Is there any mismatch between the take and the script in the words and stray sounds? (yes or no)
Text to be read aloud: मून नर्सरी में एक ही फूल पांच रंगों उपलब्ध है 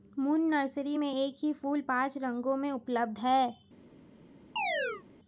yes